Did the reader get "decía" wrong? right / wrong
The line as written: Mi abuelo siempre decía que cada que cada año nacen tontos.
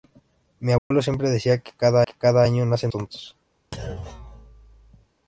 right